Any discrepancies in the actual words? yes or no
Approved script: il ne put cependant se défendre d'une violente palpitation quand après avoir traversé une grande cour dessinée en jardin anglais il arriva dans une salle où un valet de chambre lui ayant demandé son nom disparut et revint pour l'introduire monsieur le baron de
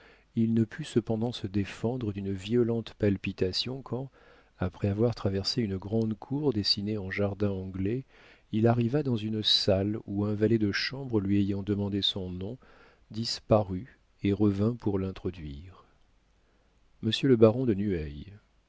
no